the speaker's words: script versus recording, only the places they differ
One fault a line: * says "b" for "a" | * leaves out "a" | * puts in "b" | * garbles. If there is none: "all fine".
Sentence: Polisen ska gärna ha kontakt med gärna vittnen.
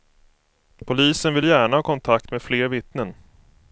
* says "vill" for "ska"
* says "fler" for "gärna"